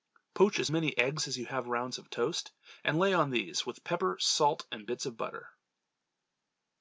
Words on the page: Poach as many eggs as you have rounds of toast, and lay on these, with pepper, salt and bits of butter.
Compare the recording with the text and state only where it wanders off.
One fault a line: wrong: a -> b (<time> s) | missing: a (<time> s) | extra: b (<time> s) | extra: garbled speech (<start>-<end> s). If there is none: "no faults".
no faults